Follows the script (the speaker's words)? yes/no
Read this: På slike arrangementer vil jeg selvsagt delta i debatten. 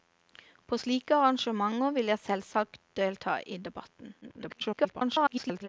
no